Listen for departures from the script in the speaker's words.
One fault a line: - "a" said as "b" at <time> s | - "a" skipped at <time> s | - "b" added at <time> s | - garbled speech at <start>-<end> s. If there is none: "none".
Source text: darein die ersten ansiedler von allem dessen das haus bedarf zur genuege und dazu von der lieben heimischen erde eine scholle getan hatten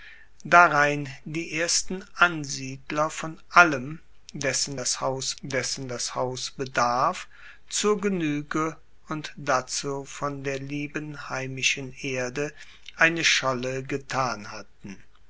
- "dessen das haus" added at 5.4 s